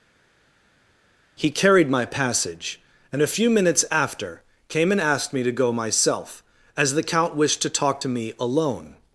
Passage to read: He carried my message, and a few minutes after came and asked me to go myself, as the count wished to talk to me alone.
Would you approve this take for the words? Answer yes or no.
no